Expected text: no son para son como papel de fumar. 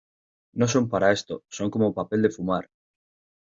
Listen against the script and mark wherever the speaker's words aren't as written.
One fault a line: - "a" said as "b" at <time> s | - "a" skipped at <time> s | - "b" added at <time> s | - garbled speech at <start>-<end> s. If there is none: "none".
- "esto" added at 1.1 s